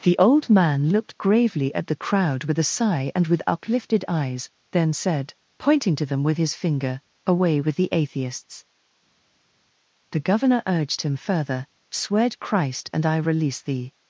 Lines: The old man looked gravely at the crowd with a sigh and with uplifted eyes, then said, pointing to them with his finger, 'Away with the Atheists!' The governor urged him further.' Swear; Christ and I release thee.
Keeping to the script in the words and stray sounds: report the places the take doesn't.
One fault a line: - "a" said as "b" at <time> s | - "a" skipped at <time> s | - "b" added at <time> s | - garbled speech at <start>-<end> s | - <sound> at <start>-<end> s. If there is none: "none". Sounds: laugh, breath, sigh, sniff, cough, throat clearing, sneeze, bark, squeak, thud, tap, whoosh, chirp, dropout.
none